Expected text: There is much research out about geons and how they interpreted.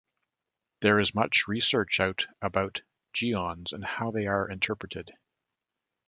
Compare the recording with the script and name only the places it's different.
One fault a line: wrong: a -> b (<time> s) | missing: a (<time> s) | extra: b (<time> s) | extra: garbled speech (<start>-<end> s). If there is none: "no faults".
extra: are (4.2 s)